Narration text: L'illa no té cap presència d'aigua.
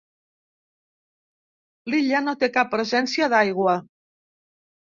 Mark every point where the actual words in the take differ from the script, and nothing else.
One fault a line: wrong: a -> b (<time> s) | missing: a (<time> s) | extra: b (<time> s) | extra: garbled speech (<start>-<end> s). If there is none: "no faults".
no faults